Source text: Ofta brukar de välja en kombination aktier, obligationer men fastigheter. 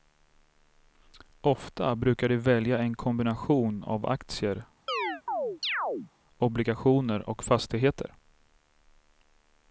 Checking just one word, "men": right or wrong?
wrong